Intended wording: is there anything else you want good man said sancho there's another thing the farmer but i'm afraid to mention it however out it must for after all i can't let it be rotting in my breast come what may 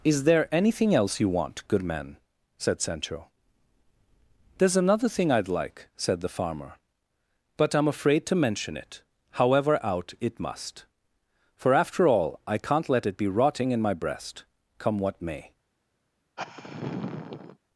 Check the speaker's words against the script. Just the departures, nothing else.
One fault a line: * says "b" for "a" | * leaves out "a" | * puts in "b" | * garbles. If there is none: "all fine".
* puts in "i'd like said"